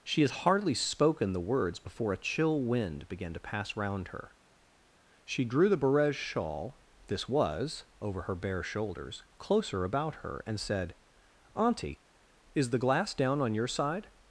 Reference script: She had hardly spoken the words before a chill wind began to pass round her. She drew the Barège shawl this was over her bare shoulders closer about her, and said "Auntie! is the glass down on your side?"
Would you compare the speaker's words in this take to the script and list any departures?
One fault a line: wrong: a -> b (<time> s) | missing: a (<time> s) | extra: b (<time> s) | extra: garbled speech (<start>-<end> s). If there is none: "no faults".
no faults